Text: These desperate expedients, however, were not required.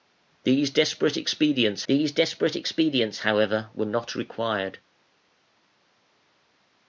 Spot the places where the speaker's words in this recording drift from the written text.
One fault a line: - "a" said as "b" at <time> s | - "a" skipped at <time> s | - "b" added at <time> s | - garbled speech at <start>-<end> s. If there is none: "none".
- "these desperate expedients" added at 1.9 s